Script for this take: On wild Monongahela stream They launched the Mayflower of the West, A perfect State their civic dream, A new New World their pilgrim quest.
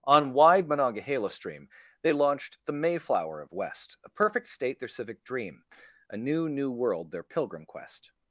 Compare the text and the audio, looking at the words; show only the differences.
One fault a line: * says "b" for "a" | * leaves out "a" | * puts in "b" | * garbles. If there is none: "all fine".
* says "wide" for "wild"
* leaves out "the"